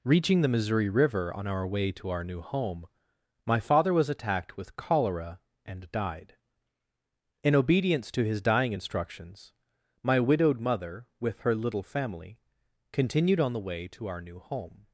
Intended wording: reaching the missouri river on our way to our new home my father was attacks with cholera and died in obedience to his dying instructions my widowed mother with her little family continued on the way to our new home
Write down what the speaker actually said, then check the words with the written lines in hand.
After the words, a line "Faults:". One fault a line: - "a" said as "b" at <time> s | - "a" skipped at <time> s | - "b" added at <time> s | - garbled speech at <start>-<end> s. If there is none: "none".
reaching the missouri river on our way to our new home my father was attacked with cholera and died in obedience to his dying instructions my widowed mother with her little family continued on the way to our new home
Faults:
- "attacks" said as "attacked" at 4.1 s